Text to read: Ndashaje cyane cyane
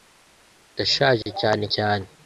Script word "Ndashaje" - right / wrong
right